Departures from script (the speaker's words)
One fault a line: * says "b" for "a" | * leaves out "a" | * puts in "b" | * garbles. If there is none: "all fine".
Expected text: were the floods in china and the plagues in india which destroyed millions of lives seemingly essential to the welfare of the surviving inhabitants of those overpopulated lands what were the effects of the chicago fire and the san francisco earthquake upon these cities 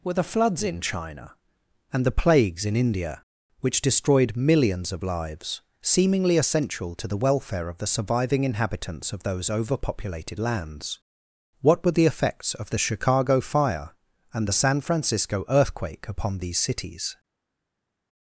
all fine